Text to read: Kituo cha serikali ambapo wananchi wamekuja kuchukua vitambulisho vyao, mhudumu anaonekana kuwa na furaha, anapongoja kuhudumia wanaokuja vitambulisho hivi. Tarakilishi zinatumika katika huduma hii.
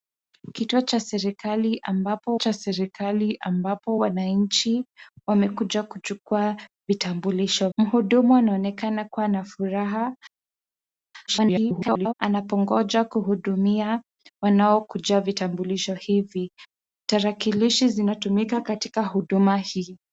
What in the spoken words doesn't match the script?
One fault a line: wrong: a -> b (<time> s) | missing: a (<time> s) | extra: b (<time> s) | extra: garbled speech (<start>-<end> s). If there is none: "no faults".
extra: cha serikali ambapo (2.3 s)
missing: vyao (7.7 s)
extra: garbled speech (11.3-12.1 s)